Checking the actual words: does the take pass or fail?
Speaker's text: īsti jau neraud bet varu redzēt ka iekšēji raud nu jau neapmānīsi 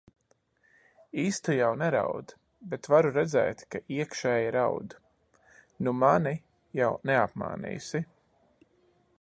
fail